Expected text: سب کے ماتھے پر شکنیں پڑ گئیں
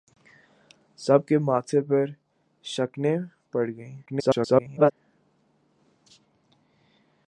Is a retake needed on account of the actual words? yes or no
yes